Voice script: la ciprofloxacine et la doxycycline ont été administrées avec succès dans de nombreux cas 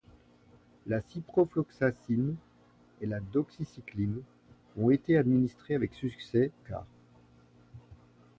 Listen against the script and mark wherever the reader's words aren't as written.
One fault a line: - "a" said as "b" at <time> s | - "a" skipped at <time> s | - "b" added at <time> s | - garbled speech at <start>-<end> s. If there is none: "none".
- "dans de nombreux" skipped at 6.5 s